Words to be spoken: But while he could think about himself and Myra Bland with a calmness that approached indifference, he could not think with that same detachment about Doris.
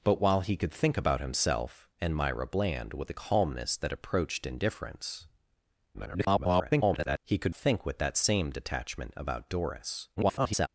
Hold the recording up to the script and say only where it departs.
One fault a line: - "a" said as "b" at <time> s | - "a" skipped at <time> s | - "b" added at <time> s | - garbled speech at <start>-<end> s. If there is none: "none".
- garbled speech at 5.9-7.2 s
- "not" skipped at 7.5 s
- garbled speech at 10.2-10.7 s